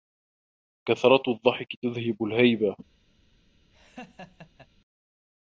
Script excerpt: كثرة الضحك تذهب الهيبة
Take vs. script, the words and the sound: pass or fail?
fail